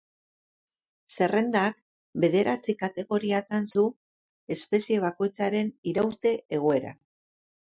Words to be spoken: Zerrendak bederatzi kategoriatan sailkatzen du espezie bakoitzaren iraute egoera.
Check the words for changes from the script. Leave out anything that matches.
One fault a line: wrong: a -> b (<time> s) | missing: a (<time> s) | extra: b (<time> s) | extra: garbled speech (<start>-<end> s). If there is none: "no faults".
missing: sailkatzen (3.7 s)